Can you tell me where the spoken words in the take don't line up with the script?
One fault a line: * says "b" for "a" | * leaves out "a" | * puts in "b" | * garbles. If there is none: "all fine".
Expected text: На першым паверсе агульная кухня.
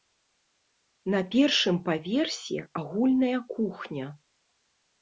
all fine